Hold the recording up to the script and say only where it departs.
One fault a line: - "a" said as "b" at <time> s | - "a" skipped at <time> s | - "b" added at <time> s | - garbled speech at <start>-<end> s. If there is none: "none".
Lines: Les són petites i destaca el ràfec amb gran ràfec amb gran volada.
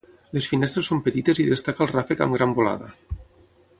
- "finestres" added at 0.5 s
- "ràfec amb gran" skipped at 2.6 s